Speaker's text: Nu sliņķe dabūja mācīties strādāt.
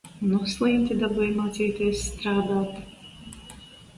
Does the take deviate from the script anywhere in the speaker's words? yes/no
no